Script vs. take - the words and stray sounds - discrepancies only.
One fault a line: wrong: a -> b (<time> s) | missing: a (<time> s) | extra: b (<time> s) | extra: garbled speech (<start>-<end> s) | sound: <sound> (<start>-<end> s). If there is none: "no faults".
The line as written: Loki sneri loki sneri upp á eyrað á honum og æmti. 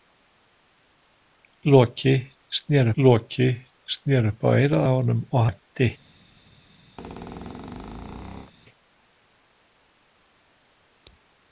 sound: squeak (7.0-8.5 s)